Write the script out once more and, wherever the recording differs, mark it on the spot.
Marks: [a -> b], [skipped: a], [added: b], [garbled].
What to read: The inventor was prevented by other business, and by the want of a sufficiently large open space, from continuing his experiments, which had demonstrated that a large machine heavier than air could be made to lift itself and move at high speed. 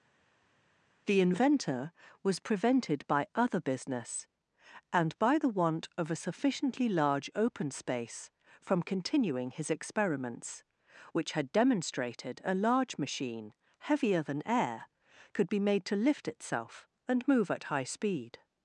The inventor was prevented by other business, and by the want of a sufficiently large open space, from continuing his experiments, which had demonstrated [skipped: that] a large machine heavier than air could be made to lift itself and move at high speed.